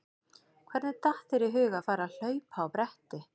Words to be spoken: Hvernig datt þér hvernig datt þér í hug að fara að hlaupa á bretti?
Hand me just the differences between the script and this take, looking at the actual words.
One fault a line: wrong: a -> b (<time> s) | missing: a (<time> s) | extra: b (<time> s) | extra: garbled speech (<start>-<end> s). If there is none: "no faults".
missing: hvernig datt þér (1.5 s)